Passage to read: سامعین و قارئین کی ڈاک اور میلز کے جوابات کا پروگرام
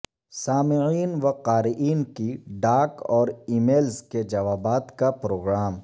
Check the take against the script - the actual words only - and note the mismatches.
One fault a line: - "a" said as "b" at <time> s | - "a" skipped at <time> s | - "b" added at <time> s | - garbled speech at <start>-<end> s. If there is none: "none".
- "ای" added at 3.5 s